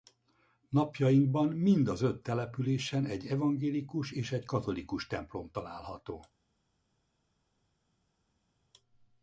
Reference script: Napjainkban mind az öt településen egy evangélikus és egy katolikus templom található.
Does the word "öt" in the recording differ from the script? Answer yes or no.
no